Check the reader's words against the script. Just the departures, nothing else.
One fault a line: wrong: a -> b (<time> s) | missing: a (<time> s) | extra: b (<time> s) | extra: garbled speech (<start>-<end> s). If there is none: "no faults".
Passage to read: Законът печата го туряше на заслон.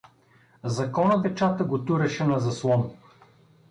no faults